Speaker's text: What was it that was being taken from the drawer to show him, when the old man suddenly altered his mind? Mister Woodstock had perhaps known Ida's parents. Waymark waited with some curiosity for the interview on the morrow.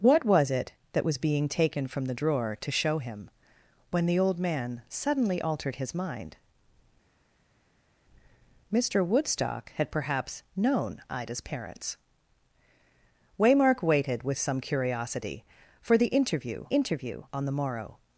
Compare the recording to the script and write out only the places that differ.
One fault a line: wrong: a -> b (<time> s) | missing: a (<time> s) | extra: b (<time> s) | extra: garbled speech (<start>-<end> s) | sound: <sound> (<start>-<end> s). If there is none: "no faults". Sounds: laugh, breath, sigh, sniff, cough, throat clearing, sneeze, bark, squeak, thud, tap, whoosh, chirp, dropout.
extra: interview (16.7 s)